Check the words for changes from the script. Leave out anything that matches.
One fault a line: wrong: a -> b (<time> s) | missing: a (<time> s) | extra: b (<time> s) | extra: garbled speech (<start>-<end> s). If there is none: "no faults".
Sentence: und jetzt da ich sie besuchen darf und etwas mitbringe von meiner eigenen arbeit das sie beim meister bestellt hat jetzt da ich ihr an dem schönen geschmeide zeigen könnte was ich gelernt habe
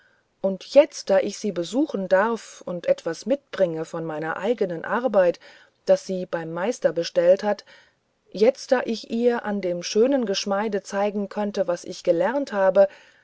no faults